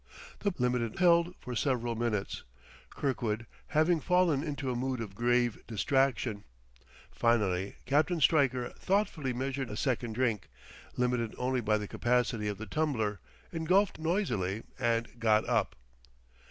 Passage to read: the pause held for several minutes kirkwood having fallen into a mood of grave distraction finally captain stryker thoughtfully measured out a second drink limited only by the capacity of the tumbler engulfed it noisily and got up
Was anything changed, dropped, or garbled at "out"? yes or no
yes